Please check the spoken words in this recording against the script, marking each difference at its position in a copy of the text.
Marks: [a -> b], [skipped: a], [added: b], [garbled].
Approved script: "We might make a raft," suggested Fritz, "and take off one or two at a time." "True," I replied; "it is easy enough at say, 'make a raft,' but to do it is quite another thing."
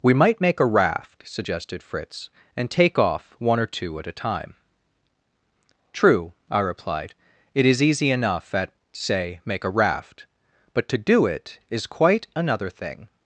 "We might make a raft," suggested Fritz, "and take off one or two at a time." "True," I replied; "it is easy enough at say, 'make a raft,' but to do it is quite another thing."